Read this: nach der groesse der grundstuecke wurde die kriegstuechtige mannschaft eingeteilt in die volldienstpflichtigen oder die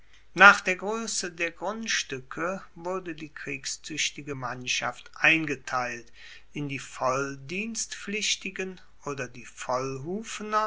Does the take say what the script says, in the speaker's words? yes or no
yes